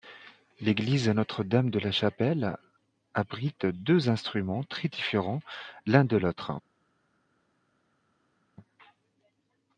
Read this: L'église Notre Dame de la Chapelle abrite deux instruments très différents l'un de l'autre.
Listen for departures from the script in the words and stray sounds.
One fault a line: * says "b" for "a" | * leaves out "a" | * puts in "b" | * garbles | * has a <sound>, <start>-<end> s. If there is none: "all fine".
all fine